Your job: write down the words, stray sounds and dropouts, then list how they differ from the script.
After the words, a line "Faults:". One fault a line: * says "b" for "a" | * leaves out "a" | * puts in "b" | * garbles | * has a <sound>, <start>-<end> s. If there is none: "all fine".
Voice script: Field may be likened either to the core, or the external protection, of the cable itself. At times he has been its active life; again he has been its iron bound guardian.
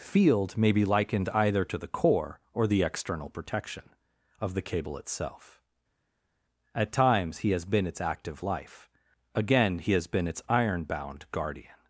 Field may be likened either to the core, or the external protection, of the cable itself. At times he has been its active life; again he has been its iron bound guardian.
Faults:
all fine